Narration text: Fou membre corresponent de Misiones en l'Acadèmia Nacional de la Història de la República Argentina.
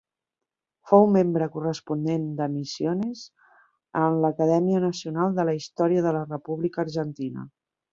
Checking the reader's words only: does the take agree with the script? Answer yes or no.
yes